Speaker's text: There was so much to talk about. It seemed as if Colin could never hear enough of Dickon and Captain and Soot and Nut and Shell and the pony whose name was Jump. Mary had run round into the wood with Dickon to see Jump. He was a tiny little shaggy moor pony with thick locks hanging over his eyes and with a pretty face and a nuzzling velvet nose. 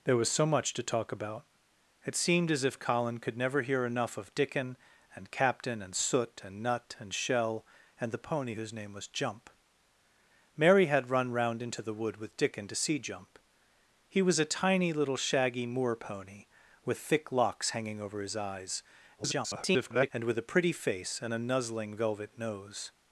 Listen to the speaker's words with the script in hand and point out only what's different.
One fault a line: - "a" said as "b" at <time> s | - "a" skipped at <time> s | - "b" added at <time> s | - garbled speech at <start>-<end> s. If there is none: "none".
- garbled speech at 19.2-20.1 s